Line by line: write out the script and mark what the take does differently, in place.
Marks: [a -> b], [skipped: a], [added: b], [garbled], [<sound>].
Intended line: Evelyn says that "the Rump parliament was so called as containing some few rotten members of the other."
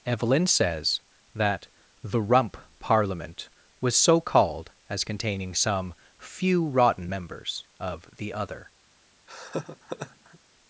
Evelyn says that "the Rump parliament was so called as containing some few rotten members of the other." [laugh]